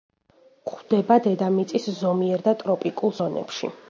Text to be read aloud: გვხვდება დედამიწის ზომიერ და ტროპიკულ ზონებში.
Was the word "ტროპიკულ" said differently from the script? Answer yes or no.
no